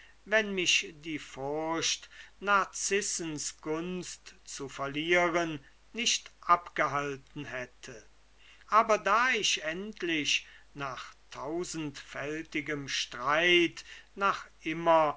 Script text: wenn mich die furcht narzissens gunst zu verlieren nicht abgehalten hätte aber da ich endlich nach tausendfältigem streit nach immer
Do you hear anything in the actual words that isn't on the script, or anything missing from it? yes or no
no